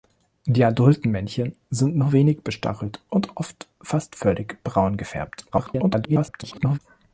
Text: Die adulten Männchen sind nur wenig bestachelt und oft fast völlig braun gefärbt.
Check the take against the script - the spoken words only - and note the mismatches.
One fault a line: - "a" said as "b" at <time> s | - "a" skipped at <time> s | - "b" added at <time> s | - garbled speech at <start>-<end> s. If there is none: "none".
- garbled speech at 5.5-6.8 s